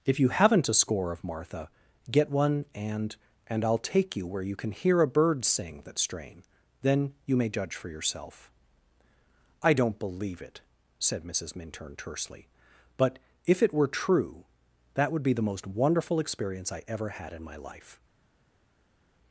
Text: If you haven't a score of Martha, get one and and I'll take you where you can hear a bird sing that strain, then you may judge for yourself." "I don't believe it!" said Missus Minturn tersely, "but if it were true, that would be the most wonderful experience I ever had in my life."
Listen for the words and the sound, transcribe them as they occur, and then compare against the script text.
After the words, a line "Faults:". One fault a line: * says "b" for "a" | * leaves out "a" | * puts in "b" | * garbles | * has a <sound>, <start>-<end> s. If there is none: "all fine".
If you haven't a score of Martha, get one and and I'll take you where you can hear a bird sing that strain, then you may judge for yourself." "I don't believe it!" said Missus Minturn tersely, "but if it were true, that would be the most wonderful experience I ever had in my life."
Faults:
all fine